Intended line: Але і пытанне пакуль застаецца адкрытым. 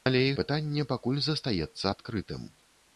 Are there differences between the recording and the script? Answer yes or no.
no